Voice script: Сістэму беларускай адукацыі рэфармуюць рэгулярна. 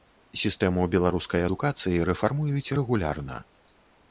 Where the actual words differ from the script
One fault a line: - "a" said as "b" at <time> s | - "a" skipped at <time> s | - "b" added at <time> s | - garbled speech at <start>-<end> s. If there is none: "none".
none